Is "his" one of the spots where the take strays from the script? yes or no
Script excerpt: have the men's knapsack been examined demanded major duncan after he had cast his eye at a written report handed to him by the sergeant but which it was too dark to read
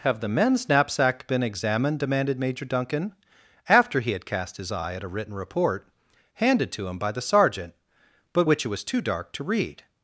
no